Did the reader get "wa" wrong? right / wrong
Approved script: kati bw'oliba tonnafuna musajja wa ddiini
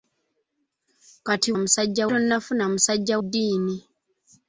wrong